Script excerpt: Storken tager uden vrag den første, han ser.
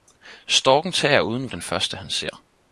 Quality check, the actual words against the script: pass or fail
fail